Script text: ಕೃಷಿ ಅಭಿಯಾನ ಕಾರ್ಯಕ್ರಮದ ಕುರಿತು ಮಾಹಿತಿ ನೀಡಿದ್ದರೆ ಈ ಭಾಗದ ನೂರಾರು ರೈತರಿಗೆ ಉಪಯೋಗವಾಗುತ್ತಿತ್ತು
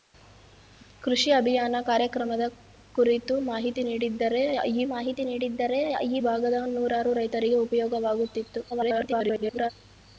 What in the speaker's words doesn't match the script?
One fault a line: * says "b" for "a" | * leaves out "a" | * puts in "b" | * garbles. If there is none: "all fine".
* puts in "ಮಾಹಿತಿ ನೀಡಿದ್ದರೆ ಈ"
* garbles